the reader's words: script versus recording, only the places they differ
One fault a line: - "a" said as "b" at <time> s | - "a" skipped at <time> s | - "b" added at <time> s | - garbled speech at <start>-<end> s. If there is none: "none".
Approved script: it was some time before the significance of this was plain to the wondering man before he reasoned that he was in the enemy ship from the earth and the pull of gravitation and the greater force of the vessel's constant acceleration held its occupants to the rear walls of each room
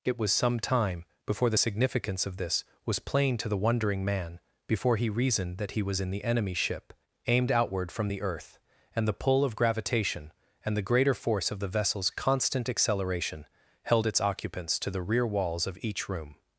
- "aimed outward" added at 7.3 s